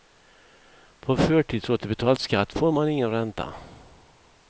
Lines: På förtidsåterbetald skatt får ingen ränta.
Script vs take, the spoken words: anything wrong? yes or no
yes